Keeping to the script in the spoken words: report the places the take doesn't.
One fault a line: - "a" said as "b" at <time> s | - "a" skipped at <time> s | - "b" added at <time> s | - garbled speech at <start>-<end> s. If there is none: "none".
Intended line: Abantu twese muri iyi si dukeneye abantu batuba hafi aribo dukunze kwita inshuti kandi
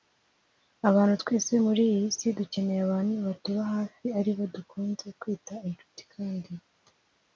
none